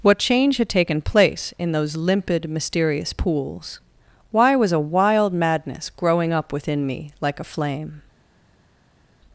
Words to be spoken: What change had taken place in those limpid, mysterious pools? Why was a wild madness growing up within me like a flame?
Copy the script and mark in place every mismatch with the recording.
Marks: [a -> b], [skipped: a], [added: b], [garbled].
What change had taken place in those limpid, mysterious pools? Why was a wild madness growing up within me like a flame?